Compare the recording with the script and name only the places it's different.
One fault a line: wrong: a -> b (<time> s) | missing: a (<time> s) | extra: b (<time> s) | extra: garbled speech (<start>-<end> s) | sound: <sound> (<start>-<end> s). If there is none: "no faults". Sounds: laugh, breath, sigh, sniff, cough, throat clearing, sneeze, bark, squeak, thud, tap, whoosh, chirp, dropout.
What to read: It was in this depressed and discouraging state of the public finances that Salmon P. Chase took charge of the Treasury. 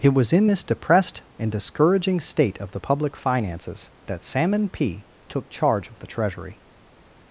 missing: Chase (5.1 s)